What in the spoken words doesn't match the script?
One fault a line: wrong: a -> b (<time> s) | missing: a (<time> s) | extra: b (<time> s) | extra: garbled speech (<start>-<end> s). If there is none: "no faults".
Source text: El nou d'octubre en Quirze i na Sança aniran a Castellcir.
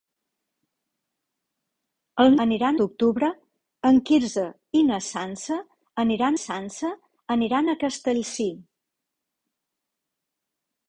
wrong: nou -> aniran (2.5 s)
extra: Sança aniran (6.4 s)